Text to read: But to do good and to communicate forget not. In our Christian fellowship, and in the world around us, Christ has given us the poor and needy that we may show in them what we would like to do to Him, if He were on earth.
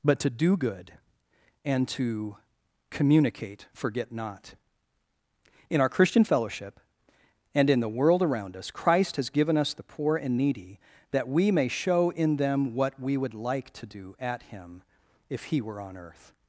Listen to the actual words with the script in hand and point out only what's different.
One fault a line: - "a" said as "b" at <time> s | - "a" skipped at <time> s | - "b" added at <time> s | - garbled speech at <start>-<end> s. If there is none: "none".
- "to" said as "at" at 14.2 s